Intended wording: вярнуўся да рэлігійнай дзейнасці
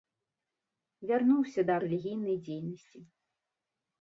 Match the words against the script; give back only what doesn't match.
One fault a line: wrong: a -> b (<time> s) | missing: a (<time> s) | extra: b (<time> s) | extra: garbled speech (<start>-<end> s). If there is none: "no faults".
no faults